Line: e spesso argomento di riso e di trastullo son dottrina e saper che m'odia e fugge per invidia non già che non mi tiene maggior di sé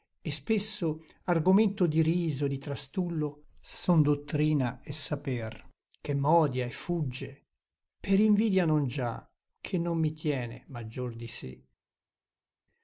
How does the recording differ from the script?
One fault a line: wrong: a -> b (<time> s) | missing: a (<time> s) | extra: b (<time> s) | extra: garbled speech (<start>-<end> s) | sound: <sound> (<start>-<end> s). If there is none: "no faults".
no faults